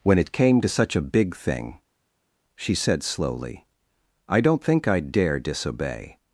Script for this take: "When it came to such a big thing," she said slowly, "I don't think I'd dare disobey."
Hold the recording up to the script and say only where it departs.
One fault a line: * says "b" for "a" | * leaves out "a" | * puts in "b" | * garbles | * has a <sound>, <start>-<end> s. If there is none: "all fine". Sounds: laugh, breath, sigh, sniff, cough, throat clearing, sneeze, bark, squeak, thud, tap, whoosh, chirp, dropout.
all fine